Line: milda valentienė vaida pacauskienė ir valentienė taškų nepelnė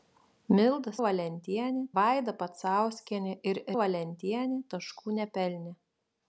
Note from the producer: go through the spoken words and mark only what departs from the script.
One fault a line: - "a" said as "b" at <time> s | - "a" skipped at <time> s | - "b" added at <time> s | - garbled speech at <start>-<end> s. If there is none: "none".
none